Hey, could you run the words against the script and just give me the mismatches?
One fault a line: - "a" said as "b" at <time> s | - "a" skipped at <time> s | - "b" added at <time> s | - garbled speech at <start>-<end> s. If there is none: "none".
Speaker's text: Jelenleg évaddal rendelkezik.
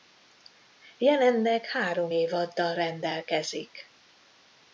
- "három" added at 1.7 s